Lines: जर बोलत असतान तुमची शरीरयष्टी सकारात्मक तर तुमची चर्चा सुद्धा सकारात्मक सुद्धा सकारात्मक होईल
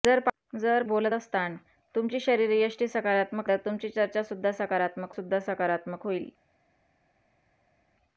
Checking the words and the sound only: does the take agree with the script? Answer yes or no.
yes